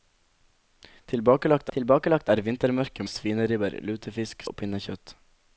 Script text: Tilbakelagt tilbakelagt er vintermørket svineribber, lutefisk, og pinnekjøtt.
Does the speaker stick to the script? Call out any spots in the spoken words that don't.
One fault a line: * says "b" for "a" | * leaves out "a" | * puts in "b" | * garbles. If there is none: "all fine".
all fine